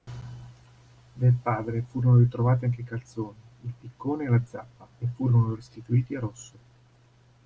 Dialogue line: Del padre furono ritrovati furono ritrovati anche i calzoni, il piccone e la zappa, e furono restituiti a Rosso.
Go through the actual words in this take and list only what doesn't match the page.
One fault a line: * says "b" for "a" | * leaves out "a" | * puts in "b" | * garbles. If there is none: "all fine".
* leaves out "furono ritrovati"